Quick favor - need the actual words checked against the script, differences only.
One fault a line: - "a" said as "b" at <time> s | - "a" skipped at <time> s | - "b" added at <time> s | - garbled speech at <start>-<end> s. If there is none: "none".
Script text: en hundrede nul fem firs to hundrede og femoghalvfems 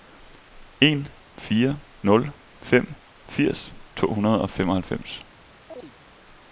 - "hundrede" said as "fire" at 1.4 s